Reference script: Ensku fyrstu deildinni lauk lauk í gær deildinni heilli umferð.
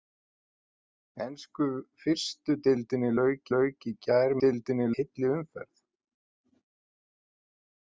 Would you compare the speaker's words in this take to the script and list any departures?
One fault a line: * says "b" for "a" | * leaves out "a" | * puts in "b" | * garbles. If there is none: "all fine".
all fine